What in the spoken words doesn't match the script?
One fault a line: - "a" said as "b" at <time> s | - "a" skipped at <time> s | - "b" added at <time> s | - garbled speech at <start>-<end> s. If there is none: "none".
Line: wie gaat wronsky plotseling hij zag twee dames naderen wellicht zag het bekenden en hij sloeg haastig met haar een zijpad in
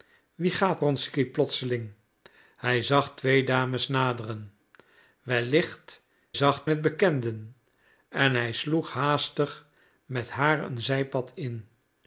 none